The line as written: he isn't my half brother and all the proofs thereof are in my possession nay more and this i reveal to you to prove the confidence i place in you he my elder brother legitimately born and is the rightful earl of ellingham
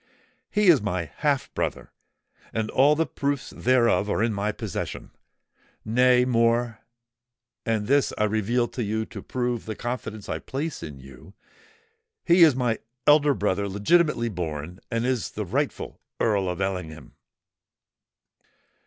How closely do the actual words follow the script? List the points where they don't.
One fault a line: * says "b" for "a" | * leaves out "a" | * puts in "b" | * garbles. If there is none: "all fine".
* says "is" for "isn't"
* puts in "is"